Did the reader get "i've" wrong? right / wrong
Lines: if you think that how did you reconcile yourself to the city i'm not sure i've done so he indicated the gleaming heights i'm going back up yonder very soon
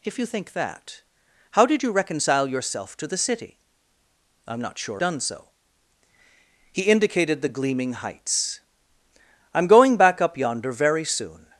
wrong